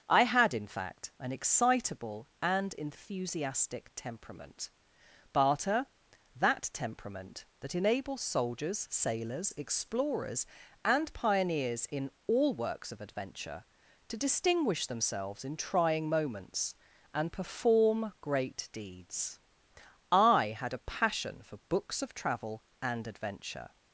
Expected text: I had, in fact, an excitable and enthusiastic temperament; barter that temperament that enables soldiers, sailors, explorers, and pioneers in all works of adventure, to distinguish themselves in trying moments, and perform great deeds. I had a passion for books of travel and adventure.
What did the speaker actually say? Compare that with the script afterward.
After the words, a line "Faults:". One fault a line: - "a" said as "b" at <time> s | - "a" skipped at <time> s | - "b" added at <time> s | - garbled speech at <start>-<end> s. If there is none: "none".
I had, in fact, an excitable and enthusiastic temperament; barter that temperament that enables soldiers, sailors, explorers, and pioneers in all works of adventure, to distinguish themselves in trying moments, and perform great deeds. I had a passion for books of travel and adventure.
Faults:
none